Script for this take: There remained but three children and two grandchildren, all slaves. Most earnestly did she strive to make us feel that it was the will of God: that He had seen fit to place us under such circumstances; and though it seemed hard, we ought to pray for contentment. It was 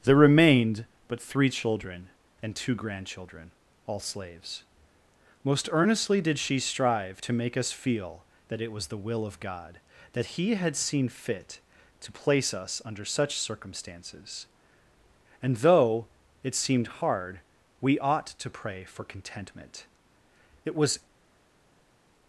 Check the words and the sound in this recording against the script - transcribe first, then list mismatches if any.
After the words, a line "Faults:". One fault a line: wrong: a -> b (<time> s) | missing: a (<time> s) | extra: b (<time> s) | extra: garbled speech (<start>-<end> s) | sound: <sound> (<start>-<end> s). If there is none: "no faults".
There remained but three children and two grandchildren, all slaves. Most earnestly did she strive to make us feel that it was the will of God: that He had seen fit to place us under such circumstances; and though it seemed hard, we ought to pray for contentment. It was
Faults:
no faults